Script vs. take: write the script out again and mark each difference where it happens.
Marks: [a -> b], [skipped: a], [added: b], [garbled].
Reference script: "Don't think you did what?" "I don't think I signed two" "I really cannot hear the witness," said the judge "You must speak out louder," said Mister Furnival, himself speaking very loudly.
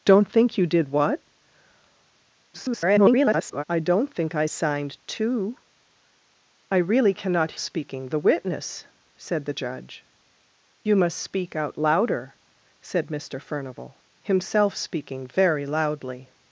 "Don't think you did what?" [garbled] "I don't think I signed two" "I really cannot [hear -> speaking] the witness," said the judge "You must speak out louder," said Mister Furnival, himself speaking very loudly.